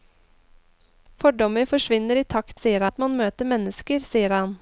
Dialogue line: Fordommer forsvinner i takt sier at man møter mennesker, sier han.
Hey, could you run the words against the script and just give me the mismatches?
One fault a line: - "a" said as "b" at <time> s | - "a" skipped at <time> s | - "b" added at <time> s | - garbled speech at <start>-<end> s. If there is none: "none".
none